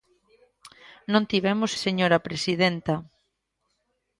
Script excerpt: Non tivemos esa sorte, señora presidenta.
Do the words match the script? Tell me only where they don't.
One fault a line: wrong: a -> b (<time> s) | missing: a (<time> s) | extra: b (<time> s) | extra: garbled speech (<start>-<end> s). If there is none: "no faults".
missing: esa sorte (1.7 s)